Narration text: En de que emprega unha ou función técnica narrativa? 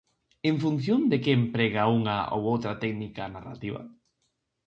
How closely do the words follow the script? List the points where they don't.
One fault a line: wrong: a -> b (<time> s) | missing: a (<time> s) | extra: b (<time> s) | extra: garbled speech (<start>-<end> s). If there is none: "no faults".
extra: función (0.6 s)
wrong: función -> outra (2.5 s)